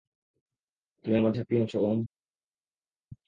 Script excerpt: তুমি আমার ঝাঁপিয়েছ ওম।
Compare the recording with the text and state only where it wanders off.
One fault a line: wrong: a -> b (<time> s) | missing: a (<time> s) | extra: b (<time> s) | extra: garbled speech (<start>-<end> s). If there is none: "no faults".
no faults